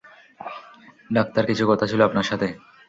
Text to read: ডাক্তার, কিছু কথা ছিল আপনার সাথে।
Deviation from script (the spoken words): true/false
false